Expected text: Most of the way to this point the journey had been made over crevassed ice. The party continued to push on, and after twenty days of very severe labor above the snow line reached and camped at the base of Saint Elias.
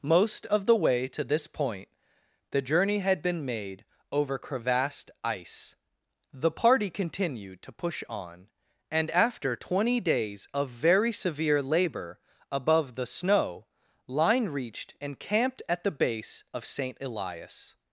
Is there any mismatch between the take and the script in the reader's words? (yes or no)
no